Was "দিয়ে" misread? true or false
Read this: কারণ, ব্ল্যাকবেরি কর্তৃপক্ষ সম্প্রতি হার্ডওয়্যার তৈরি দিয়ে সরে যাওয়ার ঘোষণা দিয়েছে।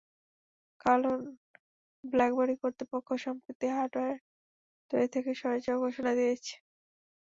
true